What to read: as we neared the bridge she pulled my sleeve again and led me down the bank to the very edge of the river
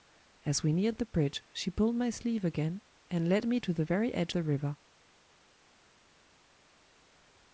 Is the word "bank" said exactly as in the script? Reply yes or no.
no